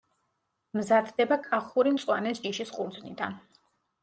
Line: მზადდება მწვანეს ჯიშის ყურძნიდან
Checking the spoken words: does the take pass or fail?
fail